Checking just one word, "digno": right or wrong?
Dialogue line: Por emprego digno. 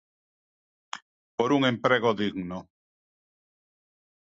right